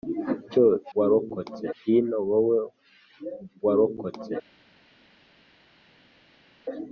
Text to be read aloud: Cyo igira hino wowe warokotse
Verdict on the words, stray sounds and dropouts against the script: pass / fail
fail